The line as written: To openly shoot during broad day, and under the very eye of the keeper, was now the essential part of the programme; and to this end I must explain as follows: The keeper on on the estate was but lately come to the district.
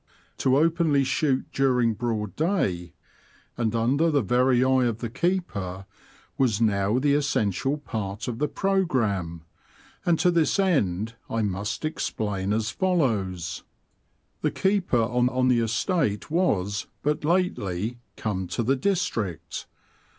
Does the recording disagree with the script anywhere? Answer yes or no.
no